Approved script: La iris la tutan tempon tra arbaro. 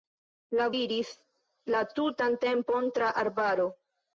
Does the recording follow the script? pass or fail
pass